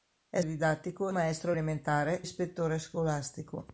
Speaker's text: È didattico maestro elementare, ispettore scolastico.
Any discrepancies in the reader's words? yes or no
no